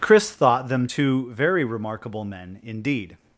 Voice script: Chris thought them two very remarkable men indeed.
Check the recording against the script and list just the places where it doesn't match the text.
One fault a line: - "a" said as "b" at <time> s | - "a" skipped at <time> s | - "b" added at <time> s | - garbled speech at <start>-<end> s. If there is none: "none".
none